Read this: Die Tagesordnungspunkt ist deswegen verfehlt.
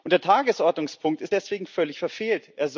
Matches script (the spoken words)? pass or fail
fail